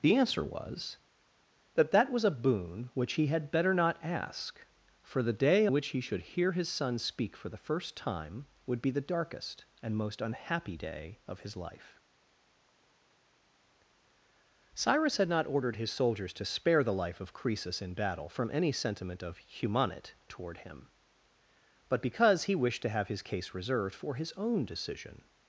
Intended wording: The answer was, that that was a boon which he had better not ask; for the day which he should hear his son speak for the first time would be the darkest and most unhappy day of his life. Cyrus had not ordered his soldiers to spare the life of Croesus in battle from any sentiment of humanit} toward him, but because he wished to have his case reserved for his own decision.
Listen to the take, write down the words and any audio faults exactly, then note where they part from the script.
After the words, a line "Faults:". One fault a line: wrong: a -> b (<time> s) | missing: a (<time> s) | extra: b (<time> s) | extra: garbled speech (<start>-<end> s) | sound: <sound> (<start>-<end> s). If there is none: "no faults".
The answer was, that that was a boon which he had better not ask; for the day which he should hear his son speak for the first time would be the darkest and most unhappy day of his life. Cyrus had not ordered his soldiers to spare the life of Croesus in battle from any sentiment of humanit} toward him, but because he wished to have his case reserved for his own decision.
Faults:
no faults